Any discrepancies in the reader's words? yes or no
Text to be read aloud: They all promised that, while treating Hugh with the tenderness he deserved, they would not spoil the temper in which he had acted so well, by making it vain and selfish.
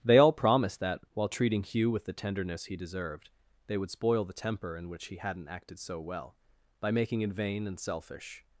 yes